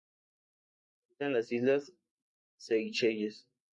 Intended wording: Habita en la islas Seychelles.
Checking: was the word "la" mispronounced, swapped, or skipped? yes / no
yes